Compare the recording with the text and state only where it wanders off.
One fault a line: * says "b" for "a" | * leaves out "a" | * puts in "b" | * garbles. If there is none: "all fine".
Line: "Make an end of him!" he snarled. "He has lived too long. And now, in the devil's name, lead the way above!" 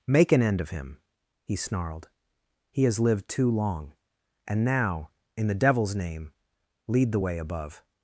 all fine